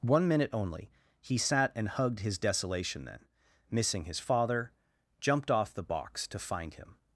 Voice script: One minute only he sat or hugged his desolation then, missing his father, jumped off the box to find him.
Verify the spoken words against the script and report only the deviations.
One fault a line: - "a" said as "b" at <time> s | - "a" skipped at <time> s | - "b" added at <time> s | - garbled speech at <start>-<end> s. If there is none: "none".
- "or" said as "and" at 1.8 s